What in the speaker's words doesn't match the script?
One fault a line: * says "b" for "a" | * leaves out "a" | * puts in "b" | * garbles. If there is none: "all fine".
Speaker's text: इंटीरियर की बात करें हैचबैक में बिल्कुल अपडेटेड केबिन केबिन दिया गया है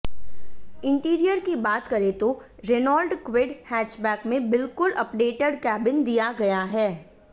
* puts in "तो रेनॉल्ट क्विड"
* leaves out "केबिन"